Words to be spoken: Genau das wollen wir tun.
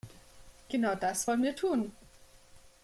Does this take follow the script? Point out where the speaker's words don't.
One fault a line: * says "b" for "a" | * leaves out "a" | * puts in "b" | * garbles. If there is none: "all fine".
all fine